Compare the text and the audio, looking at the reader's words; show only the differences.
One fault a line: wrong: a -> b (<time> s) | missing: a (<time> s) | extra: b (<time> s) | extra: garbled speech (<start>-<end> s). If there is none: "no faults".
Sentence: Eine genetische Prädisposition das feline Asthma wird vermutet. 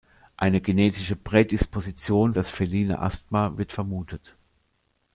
no faults